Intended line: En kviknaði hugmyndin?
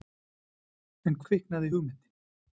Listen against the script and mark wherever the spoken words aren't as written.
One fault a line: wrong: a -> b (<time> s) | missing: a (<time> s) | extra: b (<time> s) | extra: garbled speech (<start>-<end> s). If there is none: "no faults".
no faults